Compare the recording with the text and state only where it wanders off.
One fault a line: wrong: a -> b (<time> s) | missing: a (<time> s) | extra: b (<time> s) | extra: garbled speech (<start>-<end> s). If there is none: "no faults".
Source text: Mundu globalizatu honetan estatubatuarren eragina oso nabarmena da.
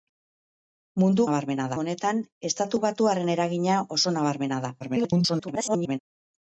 wrong: globalizatu -> nabarmena (1.3 s)
extra: garbled speech (4.8-6.0 s)